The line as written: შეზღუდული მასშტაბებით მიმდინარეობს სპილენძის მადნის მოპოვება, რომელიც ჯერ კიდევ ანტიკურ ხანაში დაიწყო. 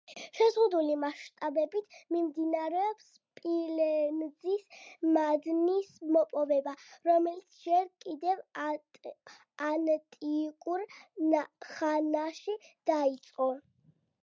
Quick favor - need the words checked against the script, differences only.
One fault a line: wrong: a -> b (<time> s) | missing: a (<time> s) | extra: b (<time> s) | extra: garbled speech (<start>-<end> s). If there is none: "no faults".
no faults